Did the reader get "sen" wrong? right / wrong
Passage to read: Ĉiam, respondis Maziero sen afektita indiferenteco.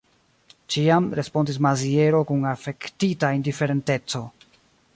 wrong